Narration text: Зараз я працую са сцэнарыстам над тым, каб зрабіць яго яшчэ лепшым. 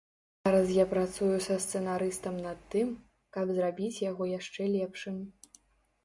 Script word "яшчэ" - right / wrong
right